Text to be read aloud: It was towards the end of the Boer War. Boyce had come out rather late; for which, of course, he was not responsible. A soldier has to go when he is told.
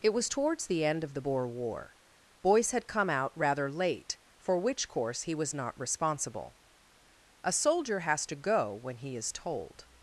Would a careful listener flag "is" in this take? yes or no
no